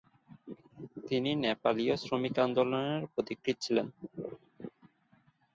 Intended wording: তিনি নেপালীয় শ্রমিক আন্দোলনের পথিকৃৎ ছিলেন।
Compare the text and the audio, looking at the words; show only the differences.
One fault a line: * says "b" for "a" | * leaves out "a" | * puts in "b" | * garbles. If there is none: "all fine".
all fine